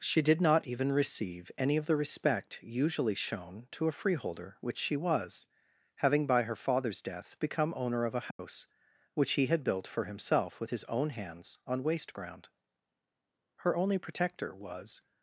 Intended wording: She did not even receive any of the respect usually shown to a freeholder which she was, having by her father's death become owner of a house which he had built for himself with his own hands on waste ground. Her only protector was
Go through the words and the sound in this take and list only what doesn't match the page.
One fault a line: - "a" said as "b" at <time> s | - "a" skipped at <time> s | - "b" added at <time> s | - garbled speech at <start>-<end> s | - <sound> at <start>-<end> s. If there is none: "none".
- dropout at 8.3-8.4 s